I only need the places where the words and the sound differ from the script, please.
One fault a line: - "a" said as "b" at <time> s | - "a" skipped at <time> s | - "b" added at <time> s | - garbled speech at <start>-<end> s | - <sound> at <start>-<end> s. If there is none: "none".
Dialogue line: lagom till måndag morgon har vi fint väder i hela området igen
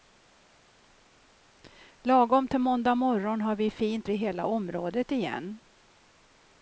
- "väder" skipped at 4.1 s